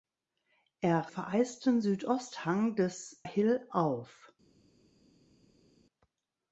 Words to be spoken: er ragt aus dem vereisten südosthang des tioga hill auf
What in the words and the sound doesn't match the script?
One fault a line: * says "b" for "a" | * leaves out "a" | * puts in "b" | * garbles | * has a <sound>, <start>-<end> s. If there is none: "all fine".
* leaves out "ragt aus dem"
* leaves out "tioga"